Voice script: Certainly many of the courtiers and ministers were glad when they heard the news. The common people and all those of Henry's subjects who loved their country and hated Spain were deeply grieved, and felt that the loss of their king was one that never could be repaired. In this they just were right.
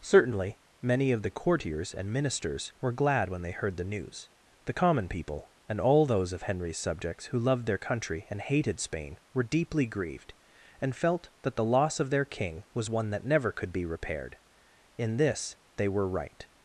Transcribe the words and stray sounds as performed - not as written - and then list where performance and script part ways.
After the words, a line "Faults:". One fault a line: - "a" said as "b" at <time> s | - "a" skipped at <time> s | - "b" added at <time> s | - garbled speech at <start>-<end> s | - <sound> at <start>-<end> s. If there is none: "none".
Certainly many of the courtiers and ministers were glad when they heard the news. The common people and all those of Henry's subjects who loved their country and hated Spain were deeply grieved, and felt that the loss of their king was one that never could be repaired. In this they were right.
Faults:
- "just" skipped at 15.9 s